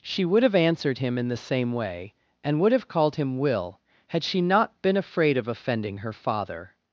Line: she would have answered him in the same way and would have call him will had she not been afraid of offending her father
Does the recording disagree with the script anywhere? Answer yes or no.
yes